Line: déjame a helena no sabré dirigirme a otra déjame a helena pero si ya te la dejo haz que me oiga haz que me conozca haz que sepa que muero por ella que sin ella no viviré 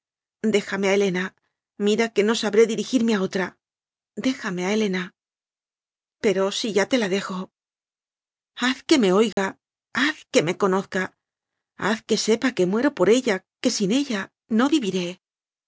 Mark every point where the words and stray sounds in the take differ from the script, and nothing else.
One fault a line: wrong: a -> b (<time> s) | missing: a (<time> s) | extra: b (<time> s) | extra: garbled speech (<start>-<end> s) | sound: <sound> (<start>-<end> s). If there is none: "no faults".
extra: mira que (1.9 s)
sound: dropout (9.3-9.4 s)